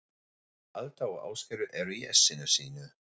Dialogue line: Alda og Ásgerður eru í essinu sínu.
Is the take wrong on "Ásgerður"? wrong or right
right